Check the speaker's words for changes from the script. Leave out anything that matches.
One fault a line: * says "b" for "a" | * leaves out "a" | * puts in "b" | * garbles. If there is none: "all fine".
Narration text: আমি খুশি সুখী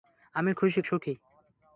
all fine